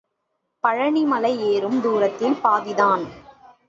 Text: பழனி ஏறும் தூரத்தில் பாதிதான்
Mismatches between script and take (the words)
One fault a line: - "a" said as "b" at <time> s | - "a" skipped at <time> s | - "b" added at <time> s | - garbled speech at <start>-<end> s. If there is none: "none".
- "மலை" added at 1.0 s